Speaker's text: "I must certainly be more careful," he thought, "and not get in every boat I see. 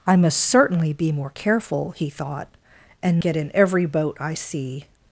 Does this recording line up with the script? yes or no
no